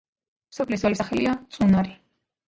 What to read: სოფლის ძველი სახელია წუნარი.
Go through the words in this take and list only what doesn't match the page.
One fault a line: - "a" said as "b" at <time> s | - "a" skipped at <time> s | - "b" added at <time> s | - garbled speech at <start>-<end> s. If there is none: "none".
none